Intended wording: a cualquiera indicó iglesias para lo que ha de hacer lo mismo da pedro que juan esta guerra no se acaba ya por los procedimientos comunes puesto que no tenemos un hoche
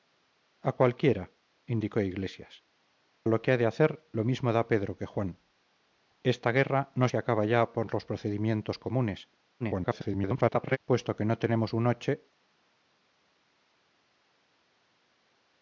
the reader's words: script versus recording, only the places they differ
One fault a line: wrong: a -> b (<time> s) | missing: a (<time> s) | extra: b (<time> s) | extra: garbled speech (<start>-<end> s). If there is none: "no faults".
missing: para (2.6 s)
extra: garbled speech (9.6-10.8 s)